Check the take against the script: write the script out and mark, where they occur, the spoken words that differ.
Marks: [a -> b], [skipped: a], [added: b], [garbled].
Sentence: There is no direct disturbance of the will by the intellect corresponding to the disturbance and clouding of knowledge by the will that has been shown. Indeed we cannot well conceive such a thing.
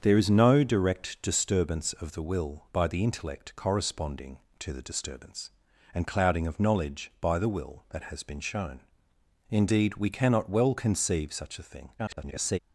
There is no direct disturbance of the will by the intellect corresponding to the disturbance and clouding of knowledge by the will that has been shown. Indeed we cannot well conceive such a thing. [garbled]